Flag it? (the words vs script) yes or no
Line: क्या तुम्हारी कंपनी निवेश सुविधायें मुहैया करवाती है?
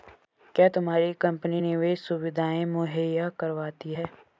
no